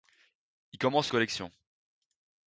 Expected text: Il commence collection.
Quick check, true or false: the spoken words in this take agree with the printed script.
true